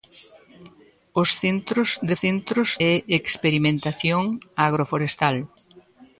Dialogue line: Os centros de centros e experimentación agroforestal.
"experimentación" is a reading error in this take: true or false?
false